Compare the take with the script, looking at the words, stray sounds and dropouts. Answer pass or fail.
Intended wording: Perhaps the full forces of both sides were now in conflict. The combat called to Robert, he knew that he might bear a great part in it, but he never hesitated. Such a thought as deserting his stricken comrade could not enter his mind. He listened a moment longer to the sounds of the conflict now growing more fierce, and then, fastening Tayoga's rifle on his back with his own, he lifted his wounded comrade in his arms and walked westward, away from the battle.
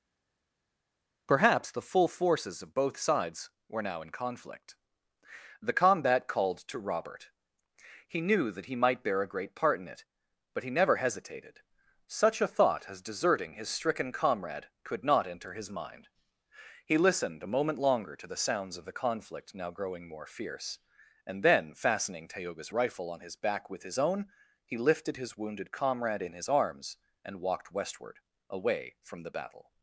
pass